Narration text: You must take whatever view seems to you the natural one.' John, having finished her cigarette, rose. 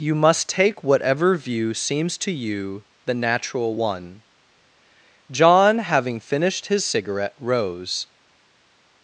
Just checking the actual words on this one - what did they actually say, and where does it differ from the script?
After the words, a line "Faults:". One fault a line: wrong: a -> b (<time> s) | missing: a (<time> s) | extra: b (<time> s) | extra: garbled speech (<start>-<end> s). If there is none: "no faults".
You must take whatever view seems to you the natural one.' John, having finished his cigarette, rose.
Faults:
wrong: her -> his (6.7 s)